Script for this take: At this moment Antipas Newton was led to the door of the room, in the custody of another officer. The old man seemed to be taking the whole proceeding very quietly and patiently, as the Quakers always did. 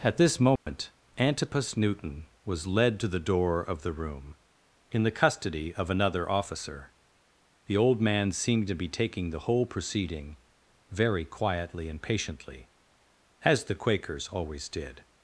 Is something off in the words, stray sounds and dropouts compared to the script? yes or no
yes